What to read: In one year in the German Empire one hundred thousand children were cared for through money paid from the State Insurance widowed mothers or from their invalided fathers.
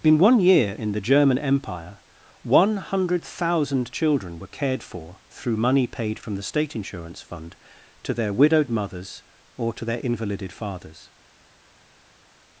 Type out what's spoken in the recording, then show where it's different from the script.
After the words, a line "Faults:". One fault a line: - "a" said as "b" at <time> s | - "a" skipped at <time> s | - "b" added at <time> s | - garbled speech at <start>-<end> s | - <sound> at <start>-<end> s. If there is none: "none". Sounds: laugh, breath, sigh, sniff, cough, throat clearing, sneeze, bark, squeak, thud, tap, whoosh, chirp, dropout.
In one year in the German Empire one hundred thousand children were cared for through money paid from the State Insurance fund to their widowed mothers or to their invalided fathers.
Faults:
- "fund to their" added at 7.2 s
- "from" said as "to" at 9.7 s